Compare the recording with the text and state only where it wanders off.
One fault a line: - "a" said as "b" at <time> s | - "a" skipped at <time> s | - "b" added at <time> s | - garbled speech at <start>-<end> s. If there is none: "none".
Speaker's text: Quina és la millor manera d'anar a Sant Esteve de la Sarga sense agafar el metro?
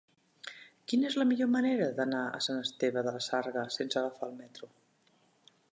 none